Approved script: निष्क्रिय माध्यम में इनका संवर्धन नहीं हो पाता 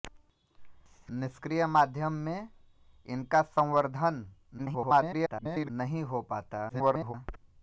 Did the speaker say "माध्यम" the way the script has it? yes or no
yes